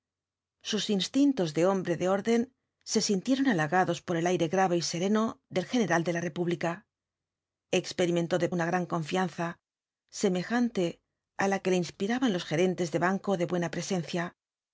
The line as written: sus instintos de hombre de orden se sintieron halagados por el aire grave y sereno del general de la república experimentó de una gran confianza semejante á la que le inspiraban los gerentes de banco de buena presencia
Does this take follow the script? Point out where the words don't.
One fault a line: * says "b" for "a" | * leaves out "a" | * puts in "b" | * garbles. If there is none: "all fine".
all fine